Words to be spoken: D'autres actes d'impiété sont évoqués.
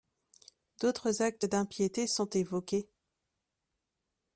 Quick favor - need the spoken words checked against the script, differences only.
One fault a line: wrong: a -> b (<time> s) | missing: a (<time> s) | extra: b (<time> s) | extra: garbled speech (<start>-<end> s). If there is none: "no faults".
no faults